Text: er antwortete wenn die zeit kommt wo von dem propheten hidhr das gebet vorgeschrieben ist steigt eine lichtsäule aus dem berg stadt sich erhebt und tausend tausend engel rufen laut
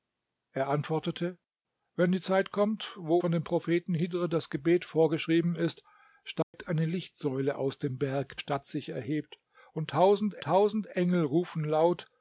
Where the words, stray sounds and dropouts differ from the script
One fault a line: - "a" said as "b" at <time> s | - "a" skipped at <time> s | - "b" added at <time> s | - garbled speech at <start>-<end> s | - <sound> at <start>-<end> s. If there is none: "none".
- dropout at 6.4-6.5 s